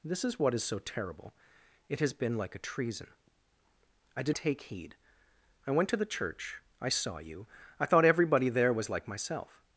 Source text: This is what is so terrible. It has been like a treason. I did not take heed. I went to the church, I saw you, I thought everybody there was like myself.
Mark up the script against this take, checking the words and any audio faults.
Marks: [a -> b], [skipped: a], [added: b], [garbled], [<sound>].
This is what is so terrible. It has been like a treason. I did [skipped: not] take heed. I went to the church, I saw you, I thought everybody there was like myself.